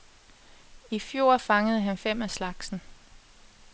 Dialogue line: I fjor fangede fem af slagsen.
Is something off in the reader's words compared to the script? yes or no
yes